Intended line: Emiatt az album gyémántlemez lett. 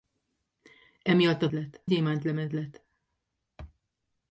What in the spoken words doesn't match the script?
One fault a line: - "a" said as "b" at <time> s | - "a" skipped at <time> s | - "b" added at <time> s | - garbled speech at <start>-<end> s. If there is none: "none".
- "album" said as "lett" at 1.5 s